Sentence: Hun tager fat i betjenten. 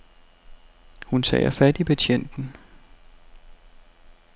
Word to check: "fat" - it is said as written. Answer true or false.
true